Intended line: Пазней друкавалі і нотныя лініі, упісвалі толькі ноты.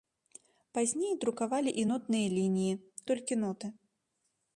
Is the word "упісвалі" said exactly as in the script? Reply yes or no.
no